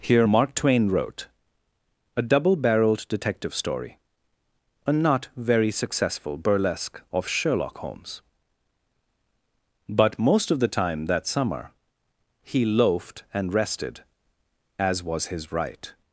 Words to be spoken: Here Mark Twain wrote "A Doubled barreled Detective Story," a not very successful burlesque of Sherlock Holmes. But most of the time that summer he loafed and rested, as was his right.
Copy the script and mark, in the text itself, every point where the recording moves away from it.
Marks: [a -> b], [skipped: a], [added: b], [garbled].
Here Mark Twain wrote "A [Doubled -> Double] barreled Detective Story," a not very successful burlesque of Sherlock Holmes. But most of the time that summer he loafed and rested, as was his right.